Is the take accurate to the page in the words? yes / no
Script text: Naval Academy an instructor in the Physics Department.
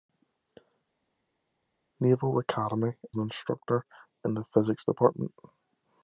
yes